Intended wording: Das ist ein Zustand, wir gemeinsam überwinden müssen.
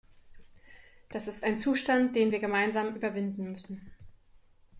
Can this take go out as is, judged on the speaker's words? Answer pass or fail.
fail